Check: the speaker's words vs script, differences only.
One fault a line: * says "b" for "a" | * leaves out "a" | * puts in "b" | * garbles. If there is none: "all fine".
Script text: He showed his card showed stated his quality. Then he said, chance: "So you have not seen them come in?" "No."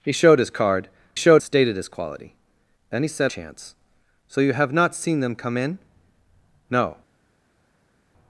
all fine